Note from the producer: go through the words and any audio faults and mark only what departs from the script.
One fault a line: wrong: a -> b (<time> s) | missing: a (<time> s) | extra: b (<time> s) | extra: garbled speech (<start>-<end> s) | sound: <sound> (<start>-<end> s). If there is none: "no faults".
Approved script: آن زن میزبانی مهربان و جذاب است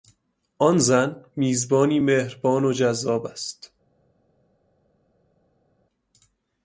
no faults